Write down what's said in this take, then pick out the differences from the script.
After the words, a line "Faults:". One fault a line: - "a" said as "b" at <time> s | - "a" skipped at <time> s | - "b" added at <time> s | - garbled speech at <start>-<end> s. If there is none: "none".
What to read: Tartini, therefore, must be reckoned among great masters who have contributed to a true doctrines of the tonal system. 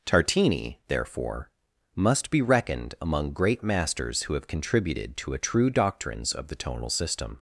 Tartini, therefore, must be reckoned among great masters who have contributed to a true doctrines of the tonal system.
Faults:
none